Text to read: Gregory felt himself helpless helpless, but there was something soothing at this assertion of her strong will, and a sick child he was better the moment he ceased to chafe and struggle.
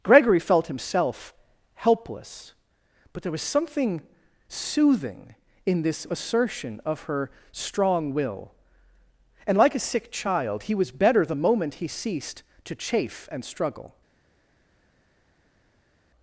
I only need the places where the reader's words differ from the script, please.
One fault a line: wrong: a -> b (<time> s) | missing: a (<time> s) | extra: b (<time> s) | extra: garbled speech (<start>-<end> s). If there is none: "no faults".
missing: helpless (2.5 s)
wrong: at -> in (5.7 s)
extra: like (9.6 s)